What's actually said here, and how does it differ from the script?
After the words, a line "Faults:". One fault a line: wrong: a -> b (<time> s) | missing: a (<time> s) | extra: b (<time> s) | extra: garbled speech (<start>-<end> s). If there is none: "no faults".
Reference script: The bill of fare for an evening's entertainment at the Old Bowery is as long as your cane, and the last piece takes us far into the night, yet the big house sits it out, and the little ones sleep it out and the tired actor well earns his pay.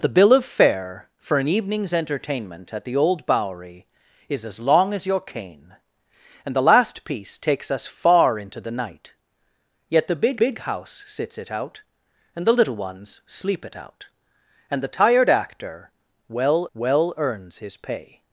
The bill of fare for an evening's entertainment at the Old Bowery is as long as your cane, and the last piece takes us far into the night, yet the big big house sits it out, and the little ones sleep it out and the tired actor well well earns his pay.
Faults:
extra: big (10.4 s)
extra: well (16.7 s)